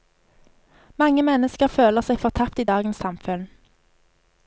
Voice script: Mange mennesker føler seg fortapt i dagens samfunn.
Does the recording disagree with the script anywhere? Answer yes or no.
no